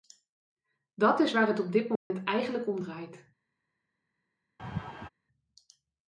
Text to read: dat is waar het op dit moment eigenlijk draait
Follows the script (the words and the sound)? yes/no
no